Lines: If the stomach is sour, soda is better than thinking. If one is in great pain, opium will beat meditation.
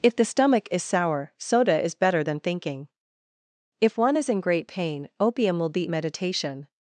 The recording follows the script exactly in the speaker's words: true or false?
true